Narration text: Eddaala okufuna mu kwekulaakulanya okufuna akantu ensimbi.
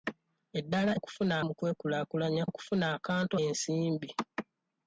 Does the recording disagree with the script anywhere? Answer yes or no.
no